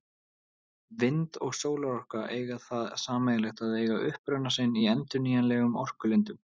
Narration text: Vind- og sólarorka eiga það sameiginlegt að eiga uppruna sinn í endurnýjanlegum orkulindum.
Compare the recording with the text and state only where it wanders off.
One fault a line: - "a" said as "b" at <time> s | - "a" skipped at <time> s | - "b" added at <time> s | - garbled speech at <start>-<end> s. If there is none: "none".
none